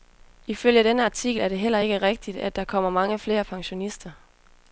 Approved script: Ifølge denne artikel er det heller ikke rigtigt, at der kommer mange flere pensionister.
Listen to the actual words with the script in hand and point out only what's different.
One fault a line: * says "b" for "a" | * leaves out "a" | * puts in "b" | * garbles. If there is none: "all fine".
all fine